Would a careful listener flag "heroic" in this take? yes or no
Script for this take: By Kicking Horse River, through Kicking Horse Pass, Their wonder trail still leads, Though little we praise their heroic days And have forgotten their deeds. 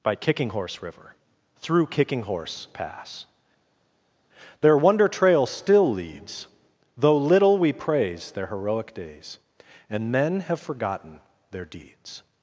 no